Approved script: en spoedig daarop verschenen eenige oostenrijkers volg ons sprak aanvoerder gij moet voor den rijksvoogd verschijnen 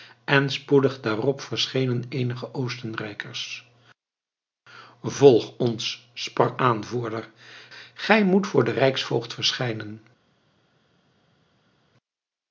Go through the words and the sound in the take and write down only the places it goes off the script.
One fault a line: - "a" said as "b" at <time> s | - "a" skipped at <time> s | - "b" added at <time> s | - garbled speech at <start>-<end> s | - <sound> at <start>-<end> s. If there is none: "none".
none